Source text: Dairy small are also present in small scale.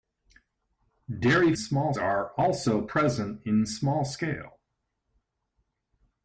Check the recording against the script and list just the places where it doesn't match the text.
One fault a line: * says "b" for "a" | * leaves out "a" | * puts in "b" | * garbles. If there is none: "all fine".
all fine